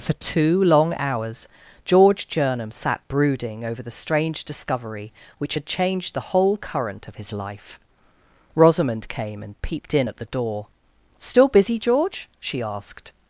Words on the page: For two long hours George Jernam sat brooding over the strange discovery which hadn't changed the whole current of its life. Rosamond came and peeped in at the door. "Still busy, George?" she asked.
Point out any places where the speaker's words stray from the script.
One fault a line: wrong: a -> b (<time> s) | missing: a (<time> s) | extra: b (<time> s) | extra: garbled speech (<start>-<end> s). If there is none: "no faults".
wrong: hadn't -> had (5.5 s)
wrong: its -> his (7.2 s)